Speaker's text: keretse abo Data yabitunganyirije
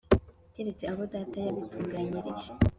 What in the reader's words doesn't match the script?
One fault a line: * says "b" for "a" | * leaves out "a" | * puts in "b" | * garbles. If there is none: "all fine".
all fine